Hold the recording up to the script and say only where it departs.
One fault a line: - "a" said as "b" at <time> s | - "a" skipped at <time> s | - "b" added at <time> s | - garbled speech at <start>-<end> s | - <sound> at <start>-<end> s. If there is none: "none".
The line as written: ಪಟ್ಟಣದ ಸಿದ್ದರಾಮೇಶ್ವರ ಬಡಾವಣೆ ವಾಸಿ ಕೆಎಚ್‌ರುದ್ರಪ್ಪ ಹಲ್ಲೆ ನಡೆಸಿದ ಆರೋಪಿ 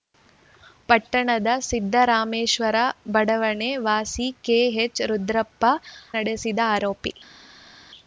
- "ಹಲ್ಲೆ" skipped at 5.6 s